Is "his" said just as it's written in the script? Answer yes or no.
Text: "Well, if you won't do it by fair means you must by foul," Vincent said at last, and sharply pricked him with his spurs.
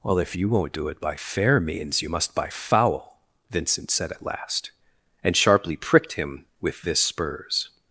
no